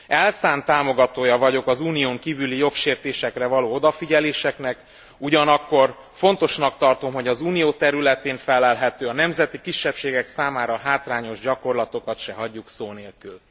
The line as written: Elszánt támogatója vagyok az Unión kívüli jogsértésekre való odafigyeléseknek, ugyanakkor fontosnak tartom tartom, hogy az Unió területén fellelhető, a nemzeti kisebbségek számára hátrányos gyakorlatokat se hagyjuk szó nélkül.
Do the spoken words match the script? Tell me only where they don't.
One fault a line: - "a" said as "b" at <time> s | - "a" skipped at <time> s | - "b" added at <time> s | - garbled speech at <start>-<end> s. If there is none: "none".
- "tartom" skipped at 7.1 s